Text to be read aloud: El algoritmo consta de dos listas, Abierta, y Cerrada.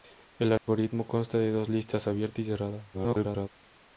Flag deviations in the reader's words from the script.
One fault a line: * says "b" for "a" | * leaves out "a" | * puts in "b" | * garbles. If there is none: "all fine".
* garbles